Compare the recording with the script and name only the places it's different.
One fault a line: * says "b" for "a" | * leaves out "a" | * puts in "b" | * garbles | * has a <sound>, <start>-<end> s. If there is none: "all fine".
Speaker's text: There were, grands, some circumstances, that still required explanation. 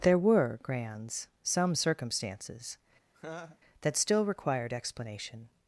* has a laugh, 3.1-3.6 s